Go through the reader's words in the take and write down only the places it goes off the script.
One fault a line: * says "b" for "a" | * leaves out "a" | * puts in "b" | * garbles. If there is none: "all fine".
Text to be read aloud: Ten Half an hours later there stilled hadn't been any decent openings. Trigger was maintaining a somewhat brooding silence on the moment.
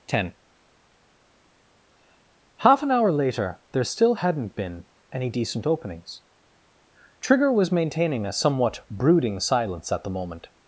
* says "hour" for "hours"
* says "still" for "stilled"
* says "at" for "on"